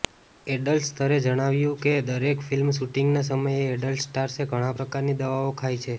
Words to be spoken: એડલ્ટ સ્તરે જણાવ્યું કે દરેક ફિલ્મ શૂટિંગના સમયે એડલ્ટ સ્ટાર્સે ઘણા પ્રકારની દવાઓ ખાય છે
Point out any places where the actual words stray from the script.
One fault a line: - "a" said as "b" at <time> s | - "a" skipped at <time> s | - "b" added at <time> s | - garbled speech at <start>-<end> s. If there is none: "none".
none